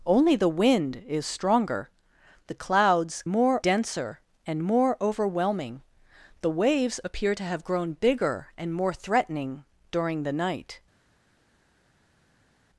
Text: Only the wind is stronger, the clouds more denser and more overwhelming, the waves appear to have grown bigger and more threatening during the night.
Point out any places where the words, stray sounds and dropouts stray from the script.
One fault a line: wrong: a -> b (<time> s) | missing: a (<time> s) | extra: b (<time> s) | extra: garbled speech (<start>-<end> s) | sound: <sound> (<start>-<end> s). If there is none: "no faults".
no faults